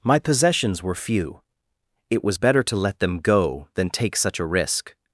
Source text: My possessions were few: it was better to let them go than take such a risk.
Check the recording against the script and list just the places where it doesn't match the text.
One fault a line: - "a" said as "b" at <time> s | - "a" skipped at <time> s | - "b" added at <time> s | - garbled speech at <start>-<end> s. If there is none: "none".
none